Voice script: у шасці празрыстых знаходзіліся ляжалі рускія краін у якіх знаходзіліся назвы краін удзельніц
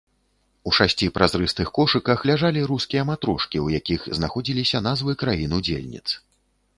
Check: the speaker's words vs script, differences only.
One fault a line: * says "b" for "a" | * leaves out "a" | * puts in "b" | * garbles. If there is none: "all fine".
* says "кошыках" for "знаходзіліся"
* says "матрошкі" for "краін"